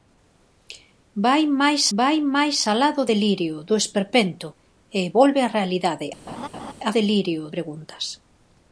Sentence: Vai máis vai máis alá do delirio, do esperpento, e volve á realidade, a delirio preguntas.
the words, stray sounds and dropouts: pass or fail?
fail